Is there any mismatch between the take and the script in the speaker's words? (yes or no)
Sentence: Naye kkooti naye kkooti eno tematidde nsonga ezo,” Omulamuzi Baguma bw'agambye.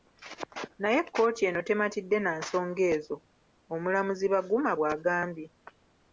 yes